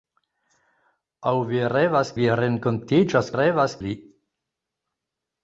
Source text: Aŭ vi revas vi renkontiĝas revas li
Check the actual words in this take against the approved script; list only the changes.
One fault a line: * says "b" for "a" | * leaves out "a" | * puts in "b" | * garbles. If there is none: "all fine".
all fine